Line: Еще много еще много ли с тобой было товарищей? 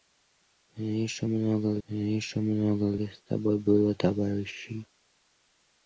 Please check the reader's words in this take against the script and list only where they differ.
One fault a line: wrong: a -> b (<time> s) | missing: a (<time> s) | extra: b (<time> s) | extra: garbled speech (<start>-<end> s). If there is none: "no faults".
no faults